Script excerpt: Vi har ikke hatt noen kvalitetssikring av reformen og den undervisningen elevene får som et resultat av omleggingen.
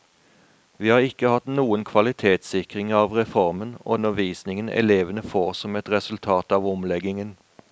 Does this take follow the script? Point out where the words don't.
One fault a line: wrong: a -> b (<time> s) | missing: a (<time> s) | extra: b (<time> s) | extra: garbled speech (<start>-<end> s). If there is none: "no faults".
missing: den (4.0 s)